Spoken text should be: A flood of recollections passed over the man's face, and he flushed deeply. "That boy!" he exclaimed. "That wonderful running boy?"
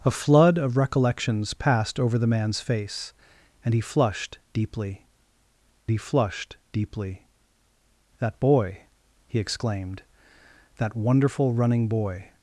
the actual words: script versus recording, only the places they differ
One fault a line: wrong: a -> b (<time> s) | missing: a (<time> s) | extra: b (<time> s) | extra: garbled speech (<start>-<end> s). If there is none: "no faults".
extra: he flushed deeply (5.9 s)